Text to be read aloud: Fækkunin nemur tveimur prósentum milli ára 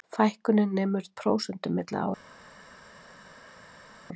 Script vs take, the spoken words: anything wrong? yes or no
yes